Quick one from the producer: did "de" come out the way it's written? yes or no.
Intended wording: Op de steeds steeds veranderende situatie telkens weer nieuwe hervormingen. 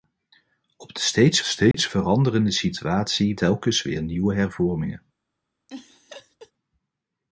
yes